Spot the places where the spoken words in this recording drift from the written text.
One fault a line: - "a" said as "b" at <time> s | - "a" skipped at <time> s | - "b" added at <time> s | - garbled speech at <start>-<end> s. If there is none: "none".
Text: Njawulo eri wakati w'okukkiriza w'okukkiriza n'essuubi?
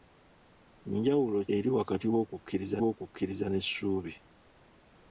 none